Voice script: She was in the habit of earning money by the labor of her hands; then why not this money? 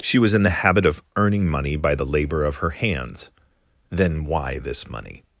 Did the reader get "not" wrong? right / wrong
wrong